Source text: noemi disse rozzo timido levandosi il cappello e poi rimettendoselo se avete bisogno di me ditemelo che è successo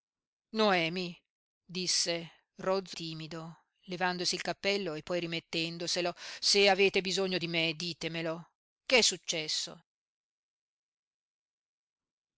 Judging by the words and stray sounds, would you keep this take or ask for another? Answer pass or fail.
pass